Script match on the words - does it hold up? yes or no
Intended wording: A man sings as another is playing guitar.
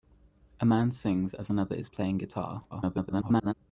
no